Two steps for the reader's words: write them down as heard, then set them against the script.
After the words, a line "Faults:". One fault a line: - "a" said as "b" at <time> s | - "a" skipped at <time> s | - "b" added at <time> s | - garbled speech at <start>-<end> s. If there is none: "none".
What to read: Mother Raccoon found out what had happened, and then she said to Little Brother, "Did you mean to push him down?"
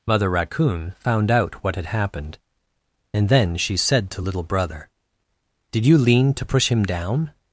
Mother Raccoon found out what had happened, and then she said to Little Brother, "Did you lean to push him down?"
Faults:
- "mean" said as "lean" at 6.0 s